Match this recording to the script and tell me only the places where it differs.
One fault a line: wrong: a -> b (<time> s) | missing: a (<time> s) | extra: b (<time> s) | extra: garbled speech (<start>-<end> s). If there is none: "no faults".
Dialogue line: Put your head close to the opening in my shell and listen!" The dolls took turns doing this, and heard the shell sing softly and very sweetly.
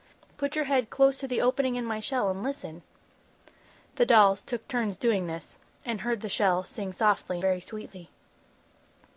missing: and (7.4 s)